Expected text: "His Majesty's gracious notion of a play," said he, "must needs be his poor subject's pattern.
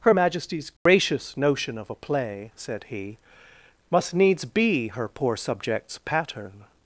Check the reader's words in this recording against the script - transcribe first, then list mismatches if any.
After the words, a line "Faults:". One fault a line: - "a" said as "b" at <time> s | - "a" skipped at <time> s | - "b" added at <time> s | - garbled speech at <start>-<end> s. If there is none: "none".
"Her Majesty's gracious notion of a play," said he, "must needs be her poor subject's pattern.
Faults:
- "His" said as "Her" at 0.0 s
- "his" said as "her" at 4.9 s